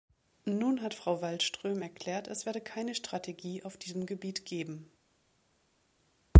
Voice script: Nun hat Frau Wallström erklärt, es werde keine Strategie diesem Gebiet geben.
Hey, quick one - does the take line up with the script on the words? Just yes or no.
no